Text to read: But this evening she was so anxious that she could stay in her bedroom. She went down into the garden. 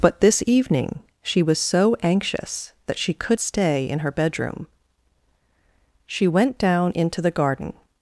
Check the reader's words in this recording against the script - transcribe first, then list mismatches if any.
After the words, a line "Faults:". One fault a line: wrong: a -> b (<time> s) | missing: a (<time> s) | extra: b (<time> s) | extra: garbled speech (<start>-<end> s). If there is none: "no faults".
But this evening she was so anxious that she could stay in her bedroom. She went down into the garden.
Faults:
no faults